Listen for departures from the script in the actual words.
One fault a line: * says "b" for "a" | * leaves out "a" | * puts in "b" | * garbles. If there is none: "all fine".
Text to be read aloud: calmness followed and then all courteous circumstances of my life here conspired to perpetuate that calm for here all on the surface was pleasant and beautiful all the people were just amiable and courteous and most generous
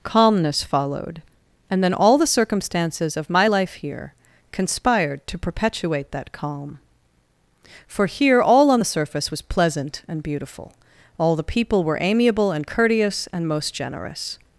* says "the" for "courteous"
* leaves out "just"